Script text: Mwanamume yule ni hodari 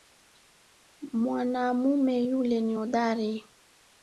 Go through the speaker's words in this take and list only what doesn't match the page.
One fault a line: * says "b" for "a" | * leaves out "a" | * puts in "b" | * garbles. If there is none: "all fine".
all fine